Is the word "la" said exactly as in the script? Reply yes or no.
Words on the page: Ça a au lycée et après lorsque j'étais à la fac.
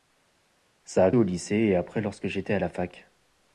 yes